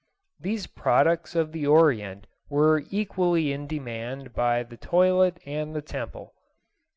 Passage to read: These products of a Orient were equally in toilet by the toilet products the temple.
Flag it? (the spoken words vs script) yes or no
yes